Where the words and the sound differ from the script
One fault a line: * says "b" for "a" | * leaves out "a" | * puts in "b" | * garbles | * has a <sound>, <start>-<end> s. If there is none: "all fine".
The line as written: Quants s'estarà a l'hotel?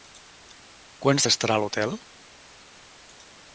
all fine